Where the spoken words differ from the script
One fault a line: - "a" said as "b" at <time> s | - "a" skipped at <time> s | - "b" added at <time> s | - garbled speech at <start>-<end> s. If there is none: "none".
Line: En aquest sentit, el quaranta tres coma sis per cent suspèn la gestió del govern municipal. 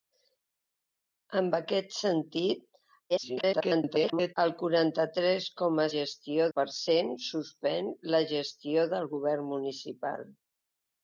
- garbled speech at 3.1-4.3 s
- "sis" said as "gestió" at 6.0 s